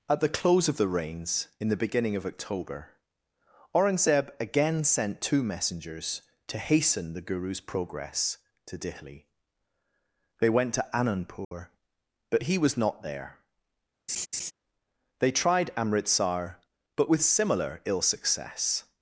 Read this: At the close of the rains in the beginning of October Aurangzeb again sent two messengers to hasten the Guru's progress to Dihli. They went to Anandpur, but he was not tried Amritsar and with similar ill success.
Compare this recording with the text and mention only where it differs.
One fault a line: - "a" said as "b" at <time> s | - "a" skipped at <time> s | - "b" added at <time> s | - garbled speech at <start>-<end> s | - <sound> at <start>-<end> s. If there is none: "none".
- dropout at 11.4-11.5 s
- "there They" added at 13.0 s
- laugh at 14.1-14.5 s
- "and" said as "but" at 17.0 s